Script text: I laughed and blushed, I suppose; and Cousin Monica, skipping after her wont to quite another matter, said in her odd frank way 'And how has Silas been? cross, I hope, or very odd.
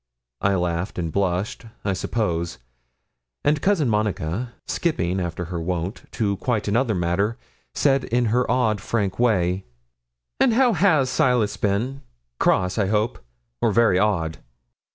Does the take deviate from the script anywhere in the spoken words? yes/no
no